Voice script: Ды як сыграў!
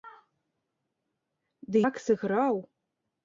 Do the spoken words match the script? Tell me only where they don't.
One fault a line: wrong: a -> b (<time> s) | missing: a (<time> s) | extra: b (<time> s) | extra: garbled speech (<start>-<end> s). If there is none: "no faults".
no faults